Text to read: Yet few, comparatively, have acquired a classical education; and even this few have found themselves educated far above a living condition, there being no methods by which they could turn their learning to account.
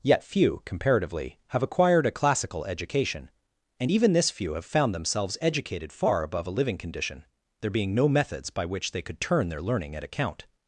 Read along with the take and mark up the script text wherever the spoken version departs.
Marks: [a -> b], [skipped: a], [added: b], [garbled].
Yet few, comparatively, have acquired a classical education; and even this few have found themselves educated far above a living condition, there being no methods by which they could turn their learning [to -> at] account.